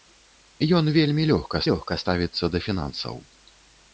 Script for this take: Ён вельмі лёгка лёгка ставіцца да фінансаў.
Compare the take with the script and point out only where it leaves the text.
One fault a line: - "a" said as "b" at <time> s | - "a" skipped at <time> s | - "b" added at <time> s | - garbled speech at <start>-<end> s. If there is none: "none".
none